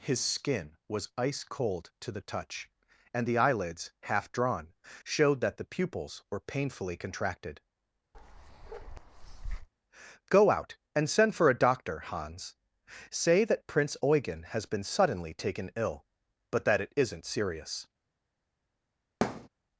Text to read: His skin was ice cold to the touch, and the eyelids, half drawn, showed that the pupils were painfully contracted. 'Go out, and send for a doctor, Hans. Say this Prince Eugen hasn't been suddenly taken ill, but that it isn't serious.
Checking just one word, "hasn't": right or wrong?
wrong